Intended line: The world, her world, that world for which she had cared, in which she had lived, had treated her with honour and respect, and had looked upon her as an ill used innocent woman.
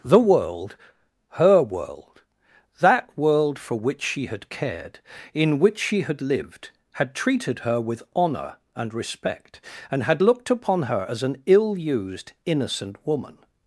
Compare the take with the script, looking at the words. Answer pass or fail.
pass